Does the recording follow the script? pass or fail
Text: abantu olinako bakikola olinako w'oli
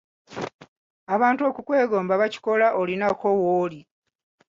fail